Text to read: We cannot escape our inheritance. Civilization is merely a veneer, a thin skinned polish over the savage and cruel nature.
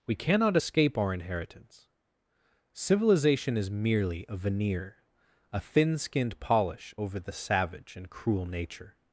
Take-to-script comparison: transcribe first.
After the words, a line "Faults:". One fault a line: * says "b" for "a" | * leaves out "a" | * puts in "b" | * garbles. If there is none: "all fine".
We cannot escape our inheritance. Civilization is merely a veneer, a thin skinned polish over the savage and cruel nature.
Faults:
all fine